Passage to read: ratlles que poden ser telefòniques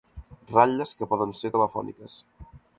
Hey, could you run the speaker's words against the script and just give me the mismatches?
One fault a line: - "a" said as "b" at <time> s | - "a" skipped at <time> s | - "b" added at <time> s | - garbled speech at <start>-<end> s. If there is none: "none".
none